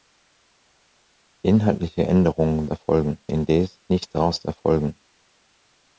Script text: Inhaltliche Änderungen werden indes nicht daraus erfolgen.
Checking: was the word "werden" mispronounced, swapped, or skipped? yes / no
yes